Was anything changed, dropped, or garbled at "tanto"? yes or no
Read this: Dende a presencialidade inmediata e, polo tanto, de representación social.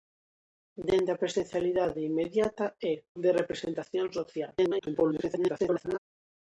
yes